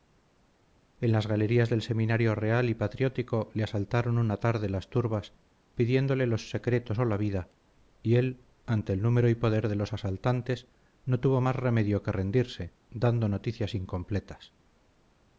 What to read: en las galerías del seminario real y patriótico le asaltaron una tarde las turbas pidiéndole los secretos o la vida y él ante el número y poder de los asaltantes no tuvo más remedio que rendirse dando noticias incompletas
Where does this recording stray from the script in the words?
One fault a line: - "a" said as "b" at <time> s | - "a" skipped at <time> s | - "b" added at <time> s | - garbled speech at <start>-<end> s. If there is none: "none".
none